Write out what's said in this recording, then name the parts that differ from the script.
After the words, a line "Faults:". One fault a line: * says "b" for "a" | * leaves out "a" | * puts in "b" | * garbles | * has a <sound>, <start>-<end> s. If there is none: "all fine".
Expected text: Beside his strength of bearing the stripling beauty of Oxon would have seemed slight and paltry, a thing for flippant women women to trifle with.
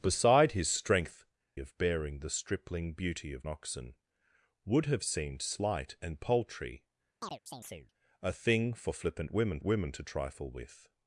Beside his strength of bearing the stripling beauty of Oxon would have seemed slight and paltry, a thing for flippant women women to trifle with.
Faults:
* has a chirp, 7.2-7.9 s